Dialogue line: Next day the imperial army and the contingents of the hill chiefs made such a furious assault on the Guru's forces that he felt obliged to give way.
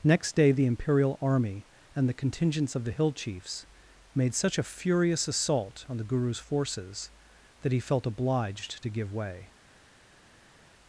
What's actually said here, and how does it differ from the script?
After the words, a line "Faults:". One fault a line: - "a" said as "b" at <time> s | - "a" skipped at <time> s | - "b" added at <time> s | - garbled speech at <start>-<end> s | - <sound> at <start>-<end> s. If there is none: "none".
Next day the imperial army and the contingents of the hill chiefs made such a furious assault on the Guru's forces that he felt obliged to give way.
Faults:
none